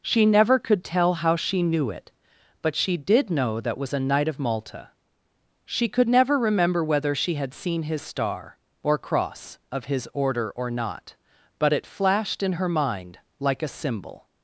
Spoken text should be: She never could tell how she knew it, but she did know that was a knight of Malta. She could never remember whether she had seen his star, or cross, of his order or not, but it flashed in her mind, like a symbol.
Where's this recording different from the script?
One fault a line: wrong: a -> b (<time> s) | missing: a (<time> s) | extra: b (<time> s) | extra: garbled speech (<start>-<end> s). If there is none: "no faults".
no faults